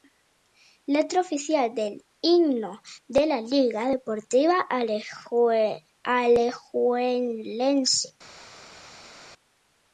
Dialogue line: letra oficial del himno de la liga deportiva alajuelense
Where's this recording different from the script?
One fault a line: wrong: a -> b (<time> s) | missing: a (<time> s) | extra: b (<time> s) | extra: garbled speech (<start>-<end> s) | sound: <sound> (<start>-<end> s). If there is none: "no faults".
no faults